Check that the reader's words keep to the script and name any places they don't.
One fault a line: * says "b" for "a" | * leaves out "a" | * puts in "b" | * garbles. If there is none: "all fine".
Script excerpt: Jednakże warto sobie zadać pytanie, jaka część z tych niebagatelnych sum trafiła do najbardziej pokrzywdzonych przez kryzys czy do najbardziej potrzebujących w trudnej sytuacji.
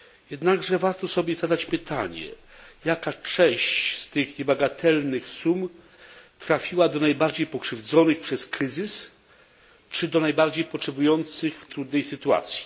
all fine